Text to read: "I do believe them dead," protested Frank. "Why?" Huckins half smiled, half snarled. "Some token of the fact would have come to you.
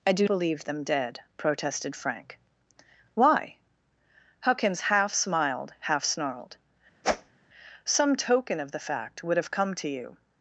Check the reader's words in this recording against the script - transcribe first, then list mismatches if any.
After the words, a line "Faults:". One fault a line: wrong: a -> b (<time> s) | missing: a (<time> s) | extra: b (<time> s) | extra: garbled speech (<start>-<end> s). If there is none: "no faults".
"I do believe them dead," protested Frank. "Why?" Huckins half smiled, half snarled. "Some token of the fact would have come to you.
Faults:
no faults